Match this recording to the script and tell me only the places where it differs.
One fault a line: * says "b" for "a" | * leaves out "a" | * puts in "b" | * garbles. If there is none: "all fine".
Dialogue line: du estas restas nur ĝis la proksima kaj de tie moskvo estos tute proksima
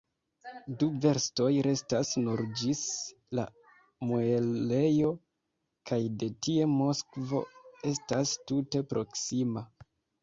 * says "verstoj" for "estas"
* says "muelejo" for "proksima"
* says "estas" for "estos"